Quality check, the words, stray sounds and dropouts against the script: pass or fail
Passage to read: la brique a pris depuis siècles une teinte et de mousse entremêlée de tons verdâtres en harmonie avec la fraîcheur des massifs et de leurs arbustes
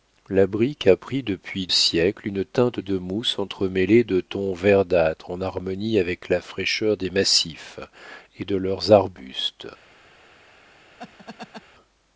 fail